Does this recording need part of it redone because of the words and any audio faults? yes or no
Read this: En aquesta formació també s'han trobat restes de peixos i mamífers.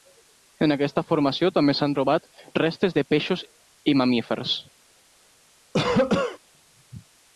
yes